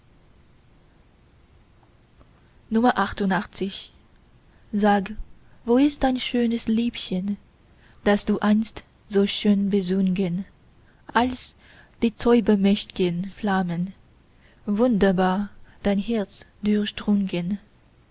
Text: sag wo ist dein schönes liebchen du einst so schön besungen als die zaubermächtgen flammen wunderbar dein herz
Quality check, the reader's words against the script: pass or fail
fail